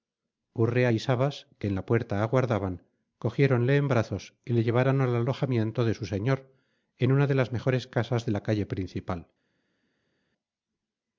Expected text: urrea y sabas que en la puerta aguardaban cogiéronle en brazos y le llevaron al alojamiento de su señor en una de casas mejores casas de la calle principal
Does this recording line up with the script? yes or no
no